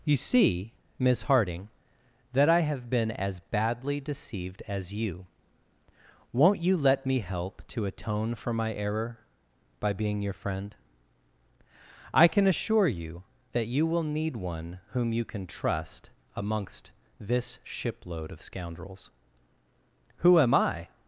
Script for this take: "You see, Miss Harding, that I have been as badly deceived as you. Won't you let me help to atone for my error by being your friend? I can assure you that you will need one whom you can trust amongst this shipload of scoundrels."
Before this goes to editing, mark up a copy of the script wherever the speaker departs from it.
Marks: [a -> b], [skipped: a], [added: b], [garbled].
"You see, Miss Harding, that I have been as badly deceived as you. Won't you let me help to atone for my error by being your friend? I can assure you that you will need one whom you can trust amongst this shipload of scoundrels." [added: Who am I]